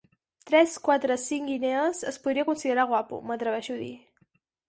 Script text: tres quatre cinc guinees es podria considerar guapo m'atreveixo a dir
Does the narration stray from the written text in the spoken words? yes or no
no